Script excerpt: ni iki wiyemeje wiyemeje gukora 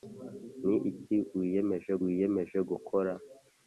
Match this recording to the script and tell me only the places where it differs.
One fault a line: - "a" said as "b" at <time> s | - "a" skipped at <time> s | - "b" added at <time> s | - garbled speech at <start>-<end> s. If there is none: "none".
none